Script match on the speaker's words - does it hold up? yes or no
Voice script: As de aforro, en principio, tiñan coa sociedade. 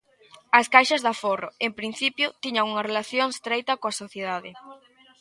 no